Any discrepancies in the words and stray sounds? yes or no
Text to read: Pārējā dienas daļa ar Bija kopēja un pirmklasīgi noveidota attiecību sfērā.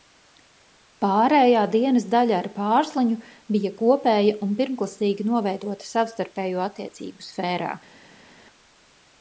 yes